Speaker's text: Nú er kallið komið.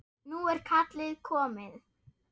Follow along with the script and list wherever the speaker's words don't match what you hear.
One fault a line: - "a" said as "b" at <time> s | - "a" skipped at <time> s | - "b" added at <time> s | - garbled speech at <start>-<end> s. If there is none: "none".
none